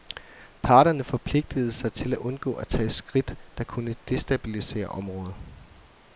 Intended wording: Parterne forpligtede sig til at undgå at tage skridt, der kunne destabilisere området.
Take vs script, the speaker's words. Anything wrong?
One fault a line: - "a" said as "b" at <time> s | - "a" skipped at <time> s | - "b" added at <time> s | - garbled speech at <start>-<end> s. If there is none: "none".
none